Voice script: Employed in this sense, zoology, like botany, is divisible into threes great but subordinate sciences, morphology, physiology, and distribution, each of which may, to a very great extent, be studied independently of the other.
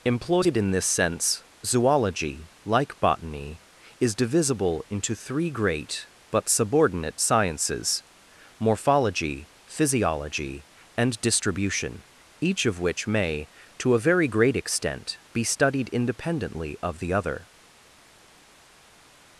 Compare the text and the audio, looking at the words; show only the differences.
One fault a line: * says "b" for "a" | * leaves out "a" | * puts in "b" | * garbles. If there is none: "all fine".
* says "three" for "threes"